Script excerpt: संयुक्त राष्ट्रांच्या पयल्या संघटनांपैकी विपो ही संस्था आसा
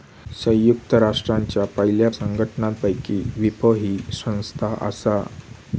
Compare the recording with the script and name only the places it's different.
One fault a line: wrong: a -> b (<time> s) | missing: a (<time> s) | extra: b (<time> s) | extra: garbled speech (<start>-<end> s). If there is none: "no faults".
no faults